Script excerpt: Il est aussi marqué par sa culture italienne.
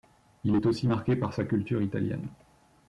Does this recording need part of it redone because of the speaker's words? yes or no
no